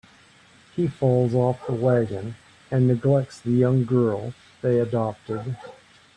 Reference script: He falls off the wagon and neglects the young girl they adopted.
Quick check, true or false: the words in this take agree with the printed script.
true